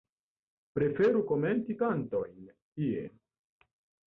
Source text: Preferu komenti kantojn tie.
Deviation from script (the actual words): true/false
false